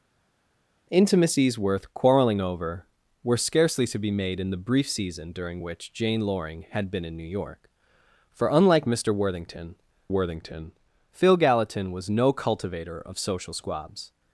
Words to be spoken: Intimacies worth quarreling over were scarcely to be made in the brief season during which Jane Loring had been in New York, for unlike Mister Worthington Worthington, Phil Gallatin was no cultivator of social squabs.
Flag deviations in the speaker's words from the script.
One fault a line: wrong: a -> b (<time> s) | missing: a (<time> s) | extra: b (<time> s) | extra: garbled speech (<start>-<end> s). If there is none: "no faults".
no faults